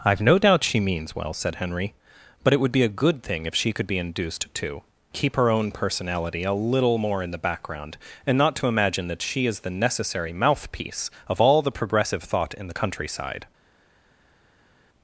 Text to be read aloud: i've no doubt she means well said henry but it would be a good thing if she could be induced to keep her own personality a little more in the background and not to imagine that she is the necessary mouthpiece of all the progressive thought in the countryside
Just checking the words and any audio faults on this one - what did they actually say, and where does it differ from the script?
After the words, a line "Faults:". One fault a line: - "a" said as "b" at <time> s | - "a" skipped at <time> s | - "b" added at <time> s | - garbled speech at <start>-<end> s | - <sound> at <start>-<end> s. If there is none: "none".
i've no doubt she means well said henry but it would be a good thing if she could be induced to keep her own personality a little more in the background and not to imagine that she is the necessary mouthpiece of all the progressive thought in the countryside
Faults:
none